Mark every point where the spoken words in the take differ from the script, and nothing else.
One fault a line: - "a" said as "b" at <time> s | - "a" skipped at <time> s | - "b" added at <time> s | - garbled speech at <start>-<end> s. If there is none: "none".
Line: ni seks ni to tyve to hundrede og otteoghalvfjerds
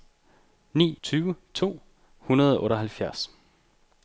- "seks ni to" skipped at 1.0 s